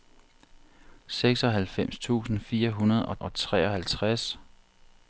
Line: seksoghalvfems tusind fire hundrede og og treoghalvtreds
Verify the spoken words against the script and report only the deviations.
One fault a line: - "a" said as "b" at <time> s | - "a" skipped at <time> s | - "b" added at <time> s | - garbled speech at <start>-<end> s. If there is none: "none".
none